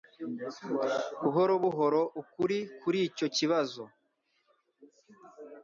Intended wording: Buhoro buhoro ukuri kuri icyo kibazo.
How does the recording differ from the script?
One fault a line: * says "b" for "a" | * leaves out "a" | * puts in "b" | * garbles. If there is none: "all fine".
all fine